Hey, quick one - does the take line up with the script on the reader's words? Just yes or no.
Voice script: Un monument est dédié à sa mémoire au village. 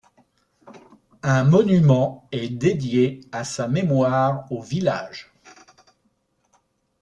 yes